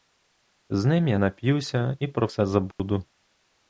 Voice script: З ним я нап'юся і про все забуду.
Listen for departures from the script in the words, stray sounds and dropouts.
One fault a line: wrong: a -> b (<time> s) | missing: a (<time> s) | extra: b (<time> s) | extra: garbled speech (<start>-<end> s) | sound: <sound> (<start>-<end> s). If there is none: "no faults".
sound: dropout (2.7-2.8 s)